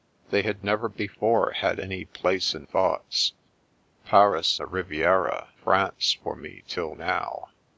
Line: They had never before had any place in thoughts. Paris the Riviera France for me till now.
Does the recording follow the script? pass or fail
pass